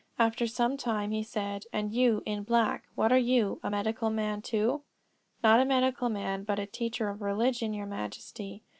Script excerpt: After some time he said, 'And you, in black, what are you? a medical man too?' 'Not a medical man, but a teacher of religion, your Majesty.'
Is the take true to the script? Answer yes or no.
yes